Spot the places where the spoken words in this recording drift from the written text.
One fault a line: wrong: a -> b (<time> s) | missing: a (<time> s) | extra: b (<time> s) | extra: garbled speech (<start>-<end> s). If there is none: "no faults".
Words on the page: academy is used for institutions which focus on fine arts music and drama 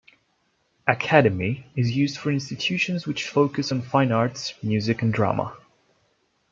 no faults